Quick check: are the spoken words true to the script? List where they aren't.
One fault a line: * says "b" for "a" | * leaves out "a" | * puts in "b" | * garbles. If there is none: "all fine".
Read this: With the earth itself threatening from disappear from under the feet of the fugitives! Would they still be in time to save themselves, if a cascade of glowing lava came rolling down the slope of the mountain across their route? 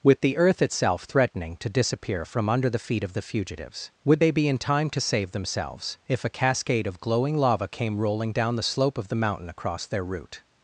* says "to" for "from"
* leaves out "still"